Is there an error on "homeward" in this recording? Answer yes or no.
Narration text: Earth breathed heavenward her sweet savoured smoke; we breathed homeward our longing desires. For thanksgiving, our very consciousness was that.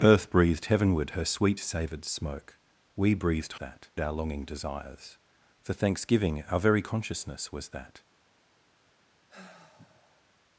yes